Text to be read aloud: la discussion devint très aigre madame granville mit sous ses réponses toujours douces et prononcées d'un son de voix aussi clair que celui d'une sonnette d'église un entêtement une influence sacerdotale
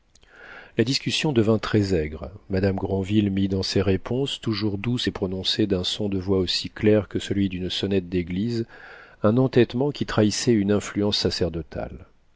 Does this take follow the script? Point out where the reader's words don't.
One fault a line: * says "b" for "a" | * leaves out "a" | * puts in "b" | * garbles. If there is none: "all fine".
* says "dans" for "sous"
* puts in "qui trahissait"